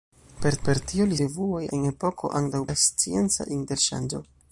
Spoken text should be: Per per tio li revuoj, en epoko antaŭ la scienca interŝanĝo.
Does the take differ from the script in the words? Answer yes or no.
no